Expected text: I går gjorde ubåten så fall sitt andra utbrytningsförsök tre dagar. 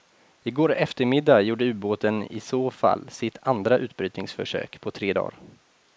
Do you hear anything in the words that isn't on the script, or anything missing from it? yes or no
yes